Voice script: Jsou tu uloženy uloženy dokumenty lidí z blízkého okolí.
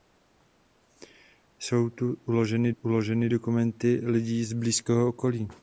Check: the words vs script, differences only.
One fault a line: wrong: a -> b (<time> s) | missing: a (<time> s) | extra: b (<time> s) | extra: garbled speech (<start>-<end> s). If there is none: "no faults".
no faults